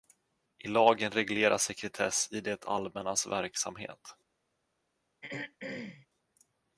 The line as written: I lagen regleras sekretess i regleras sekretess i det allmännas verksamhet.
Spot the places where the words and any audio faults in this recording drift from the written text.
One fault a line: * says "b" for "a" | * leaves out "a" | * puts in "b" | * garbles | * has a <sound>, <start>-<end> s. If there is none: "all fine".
* leaves out "regleras sekretess i"
* has a throat clearing, 5.2-6.1 s